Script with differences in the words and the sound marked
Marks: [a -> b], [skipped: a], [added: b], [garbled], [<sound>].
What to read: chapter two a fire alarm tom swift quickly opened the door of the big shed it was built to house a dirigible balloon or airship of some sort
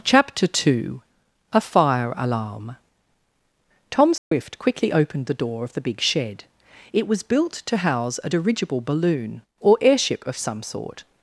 chapter two a fire alarm tom swift [dropout] quickly opened the door of the big shed it was built to house a dirigible balloon or airship of some sort